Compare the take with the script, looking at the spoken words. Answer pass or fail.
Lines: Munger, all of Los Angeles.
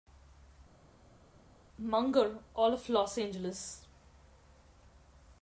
pass